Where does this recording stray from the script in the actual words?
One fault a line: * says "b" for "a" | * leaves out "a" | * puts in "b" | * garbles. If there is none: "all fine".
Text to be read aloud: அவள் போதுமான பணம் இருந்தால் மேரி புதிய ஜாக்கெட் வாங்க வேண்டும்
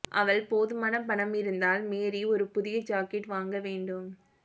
* puts in "ஒரு"